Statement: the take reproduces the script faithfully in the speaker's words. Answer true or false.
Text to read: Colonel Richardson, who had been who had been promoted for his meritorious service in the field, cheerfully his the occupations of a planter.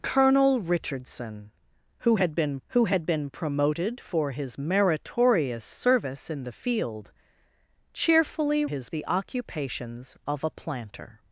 true